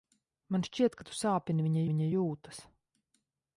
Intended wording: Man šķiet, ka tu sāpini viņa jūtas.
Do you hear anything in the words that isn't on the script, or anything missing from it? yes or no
yes